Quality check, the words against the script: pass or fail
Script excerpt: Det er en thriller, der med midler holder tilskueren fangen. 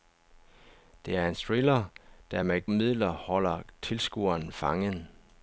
pass